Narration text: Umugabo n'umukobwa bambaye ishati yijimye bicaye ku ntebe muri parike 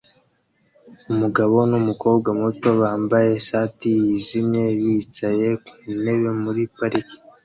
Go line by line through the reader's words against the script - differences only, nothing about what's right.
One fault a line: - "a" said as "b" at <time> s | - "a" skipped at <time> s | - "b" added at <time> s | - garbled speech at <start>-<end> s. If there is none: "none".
- "muto" added at 2.4 s